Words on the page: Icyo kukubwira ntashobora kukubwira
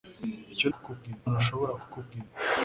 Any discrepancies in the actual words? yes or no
no